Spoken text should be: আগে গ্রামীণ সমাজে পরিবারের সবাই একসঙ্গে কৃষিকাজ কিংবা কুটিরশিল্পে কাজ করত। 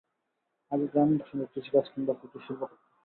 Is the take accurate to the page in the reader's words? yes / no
no